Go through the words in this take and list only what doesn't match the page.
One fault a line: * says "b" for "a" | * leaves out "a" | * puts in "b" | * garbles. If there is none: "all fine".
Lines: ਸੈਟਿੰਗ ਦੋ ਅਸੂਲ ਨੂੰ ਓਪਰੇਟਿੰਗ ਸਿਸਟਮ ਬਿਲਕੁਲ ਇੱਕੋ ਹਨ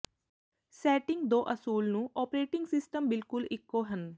all fine